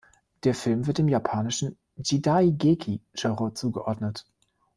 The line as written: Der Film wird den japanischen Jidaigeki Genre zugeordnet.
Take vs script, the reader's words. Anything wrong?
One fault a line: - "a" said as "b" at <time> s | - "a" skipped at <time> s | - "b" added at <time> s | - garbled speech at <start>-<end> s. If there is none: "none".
- "den" said as "dem" at 1.0 s